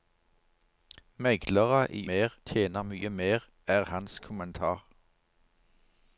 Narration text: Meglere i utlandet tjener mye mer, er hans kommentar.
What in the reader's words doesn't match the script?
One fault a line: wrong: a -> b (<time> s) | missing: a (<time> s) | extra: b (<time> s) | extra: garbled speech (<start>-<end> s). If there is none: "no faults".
wrong: utlandet -> mer (2.1 s)